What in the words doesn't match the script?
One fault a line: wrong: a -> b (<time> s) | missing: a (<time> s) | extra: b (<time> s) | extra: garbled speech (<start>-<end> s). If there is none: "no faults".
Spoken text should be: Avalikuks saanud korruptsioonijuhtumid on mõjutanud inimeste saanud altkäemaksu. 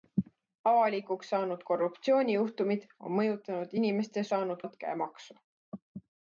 no faults